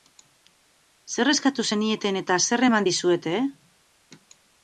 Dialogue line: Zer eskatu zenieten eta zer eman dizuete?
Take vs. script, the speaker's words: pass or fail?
pass